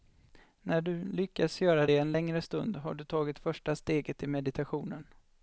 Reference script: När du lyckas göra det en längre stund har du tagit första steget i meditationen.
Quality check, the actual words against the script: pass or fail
pass